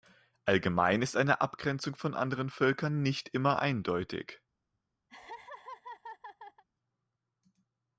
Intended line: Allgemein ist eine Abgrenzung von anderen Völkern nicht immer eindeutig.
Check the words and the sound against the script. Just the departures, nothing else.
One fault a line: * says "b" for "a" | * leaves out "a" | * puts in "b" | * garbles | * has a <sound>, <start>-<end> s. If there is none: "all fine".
* has a laugh, 5.1-6.6 s